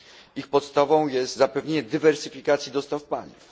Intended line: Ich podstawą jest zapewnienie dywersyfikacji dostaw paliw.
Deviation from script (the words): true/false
false